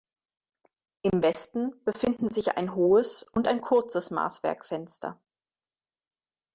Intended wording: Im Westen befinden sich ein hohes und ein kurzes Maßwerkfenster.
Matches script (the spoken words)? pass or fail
pass